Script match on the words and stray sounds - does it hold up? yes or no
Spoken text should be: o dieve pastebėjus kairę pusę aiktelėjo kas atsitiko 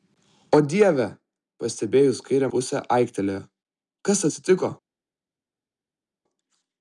yes